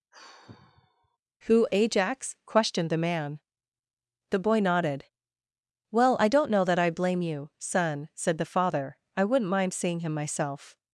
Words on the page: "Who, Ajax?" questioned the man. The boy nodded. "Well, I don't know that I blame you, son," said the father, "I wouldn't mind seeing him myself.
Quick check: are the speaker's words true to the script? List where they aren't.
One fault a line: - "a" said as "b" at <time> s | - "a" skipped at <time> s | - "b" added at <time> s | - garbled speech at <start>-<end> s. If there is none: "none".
none